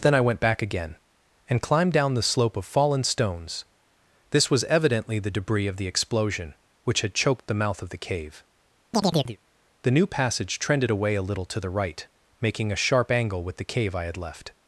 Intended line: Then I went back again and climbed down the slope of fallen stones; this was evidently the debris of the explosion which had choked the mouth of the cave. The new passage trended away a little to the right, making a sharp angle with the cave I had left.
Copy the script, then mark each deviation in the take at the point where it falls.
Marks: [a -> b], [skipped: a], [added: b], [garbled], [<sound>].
Then I went back again and climbed down the slope of fallen stones; this was evidently the debris of the explosion which had choked the mouth of the cave. [chirp] The new passage trended away a little to the right, making a sharp angle with the cave I had left.